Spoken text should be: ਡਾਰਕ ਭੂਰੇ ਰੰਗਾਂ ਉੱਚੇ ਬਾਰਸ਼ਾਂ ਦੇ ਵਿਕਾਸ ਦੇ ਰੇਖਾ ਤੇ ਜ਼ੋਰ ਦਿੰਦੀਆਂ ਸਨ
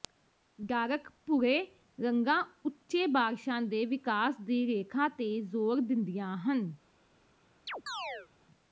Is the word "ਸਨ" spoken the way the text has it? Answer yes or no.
no